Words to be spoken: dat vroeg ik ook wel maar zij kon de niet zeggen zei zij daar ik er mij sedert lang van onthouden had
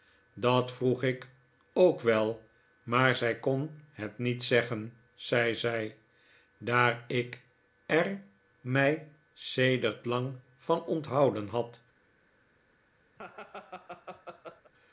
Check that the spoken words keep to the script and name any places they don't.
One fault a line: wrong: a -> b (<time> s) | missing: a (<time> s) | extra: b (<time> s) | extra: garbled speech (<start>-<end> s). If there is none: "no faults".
wrong: de -> het (3.9 s)